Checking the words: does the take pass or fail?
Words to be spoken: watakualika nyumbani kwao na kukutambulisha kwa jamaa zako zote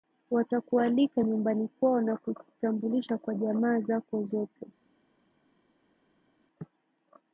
pass